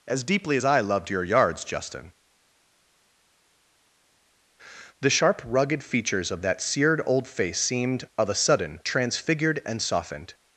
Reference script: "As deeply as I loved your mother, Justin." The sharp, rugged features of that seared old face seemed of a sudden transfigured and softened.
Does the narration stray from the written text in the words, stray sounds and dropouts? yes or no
yes